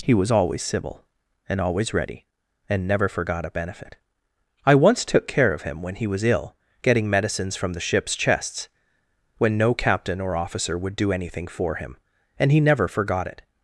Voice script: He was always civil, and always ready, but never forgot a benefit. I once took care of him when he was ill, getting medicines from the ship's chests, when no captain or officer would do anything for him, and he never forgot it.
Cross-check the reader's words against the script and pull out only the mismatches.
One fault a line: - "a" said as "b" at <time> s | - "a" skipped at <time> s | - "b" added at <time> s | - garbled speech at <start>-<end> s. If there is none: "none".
- "but" said as "and" at 2.7 s